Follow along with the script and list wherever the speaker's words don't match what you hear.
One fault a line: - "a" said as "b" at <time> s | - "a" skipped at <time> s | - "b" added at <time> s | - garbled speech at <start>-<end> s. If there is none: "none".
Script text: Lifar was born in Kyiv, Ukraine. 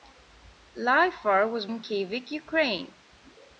- "born" skipped at 1.7 s